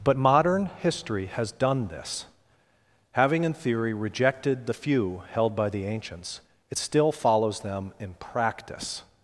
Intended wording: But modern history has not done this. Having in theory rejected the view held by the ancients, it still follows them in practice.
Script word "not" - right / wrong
wrong